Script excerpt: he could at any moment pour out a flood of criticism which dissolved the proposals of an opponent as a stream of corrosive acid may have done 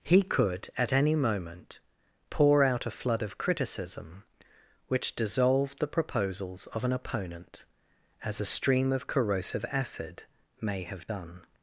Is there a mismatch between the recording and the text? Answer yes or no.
no